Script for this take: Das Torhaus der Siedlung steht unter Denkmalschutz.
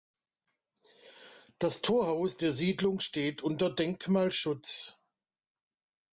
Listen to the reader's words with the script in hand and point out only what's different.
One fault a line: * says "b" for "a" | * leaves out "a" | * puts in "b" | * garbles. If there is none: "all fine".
all fine